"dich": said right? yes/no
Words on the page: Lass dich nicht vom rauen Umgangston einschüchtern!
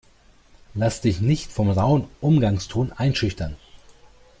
yes